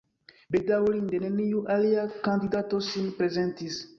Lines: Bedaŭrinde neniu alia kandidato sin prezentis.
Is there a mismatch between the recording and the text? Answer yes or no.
no